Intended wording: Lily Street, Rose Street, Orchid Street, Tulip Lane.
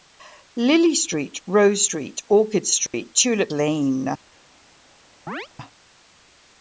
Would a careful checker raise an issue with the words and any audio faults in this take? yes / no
yes